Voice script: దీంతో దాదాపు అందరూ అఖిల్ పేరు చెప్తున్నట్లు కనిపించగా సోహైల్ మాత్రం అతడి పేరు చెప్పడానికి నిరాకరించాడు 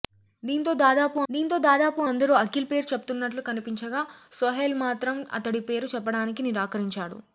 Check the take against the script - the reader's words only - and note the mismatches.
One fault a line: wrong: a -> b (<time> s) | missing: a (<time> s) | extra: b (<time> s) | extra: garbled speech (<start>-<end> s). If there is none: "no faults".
extra: దీంతో దాదాపు (1.3 s)